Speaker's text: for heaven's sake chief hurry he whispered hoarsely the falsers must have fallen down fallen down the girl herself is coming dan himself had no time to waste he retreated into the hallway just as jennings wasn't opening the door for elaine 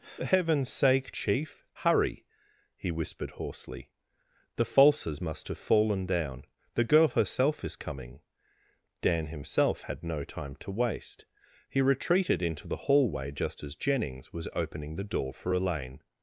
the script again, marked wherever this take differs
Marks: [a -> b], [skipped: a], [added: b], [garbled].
for heaven's sake chief hurry he whispered hoarsely the falsers must have fallen down [skipped: fallen down] the girl herself is coming dan himself had no time to waste he retreated into the hallway just as jennings [wasn't -> was] opening the door for elaine